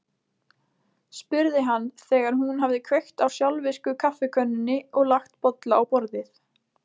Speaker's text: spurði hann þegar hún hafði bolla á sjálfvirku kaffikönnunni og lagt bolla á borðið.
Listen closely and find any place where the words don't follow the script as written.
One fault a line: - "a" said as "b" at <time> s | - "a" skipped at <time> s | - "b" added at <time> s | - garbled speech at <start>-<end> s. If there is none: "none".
- "bolla" said as "kveikt" at 2.9 s